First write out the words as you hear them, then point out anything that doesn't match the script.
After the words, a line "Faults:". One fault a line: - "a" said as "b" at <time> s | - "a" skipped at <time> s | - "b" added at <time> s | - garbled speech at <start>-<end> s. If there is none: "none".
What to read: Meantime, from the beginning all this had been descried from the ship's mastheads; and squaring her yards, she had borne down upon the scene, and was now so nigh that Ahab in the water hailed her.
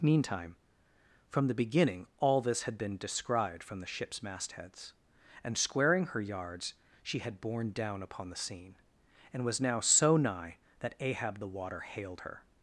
Meantime, from the beginning all this had been descried from the ship's mastheads; and squaring her yards, she had borne down upon the scene, and was now so nigh that Ahab the water hailed her.
Faults:
- "in" skipped at 11.4 s